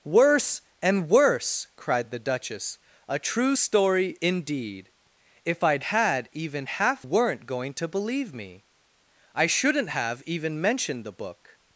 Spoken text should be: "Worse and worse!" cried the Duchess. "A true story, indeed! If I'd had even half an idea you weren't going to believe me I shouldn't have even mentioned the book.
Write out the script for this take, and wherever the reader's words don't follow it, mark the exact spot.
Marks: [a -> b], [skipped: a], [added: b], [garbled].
"Worse and worse!" cried the Duchess. "A true story, indeed! If I'd had even half [skipped: an idea you] weren't going to believe me I shouldn't have even mentioned the book.